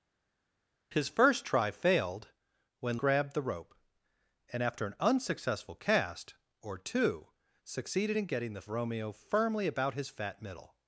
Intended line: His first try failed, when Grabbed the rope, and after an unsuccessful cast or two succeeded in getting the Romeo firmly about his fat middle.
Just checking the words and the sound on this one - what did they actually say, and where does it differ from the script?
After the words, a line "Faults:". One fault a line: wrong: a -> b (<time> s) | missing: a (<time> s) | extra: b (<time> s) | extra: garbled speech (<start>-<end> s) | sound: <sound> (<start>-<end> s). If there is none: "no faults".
His first try failed, when Grabbed the rope, and after an unsuccessful cast or two succeeded in getting the Romeo firmly about his fat middle.
Faults:
no faults